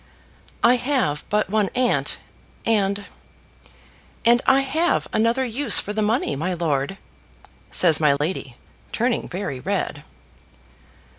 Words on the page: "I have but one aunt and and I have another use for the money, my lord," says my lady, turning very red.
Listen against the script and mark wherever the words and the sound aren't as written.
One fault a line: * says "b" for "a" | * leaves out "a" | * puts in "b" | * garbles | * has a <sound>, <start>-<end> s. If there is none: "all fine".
* has a dropout, 8.2-8.2 s